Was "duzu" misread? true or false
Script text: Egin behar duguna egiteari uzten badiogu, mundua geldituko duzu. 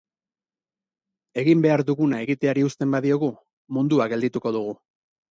true